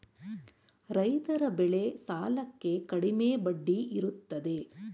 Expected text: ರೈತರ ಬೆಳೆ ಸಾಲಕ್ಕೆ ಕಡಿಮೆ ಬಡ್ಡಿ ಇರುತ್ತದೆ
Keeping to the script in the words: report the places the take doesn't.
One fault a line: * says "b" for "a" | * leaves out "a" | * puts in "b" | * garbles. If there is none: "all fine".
all fine